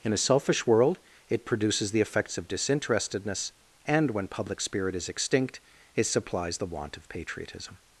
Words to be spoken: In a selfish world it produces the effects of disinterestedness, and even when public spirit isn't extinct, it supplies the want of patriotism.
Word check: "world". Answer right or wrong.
right